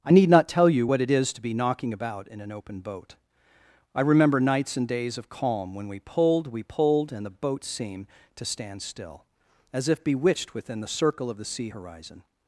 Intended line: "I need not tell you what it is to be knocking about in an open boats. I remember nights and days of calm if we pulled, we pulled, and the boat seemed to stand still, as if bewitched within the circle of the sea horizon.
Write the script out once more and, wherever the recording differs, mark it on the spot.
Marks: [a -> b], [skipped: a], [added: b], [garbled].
"I need not tell you what it is to be knocking about in an open [boats. -> boat] I remember nights and days of calm [if -> when] we pulled, we pulled, and the boat seemed to stand still, as if bewitched within the circle of the sea horizon.